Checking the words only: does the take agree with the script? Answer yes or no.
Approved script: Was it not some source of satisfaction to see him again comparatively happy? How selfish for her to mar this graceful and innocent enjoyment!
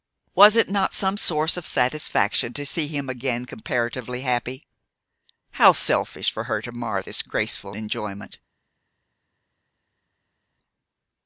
no